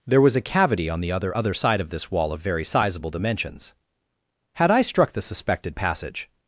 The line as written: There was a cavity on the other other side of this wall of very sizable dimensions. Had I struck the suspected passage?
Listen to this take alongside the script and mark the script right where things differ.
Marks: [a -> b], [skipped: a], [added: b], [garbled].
There was a cavity on the other other side of this wall of very sizable dimensions. Had I struck the suspected passage?